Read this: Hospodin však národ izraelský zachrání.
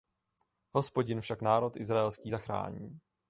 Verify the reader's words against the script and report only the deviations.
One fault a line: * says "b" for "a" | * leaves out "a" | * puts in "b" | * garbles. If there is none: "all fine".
all fine